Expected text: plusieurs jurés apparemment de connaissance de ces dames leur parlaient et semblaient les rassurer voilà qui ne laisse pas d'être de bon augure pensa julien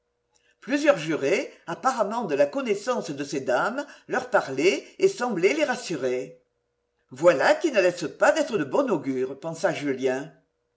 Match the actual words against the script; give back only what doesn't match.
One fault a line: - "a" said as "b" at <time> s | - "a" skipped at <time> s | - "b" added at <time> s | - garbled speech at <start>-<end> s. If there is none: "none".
- "la" added at 2.3 s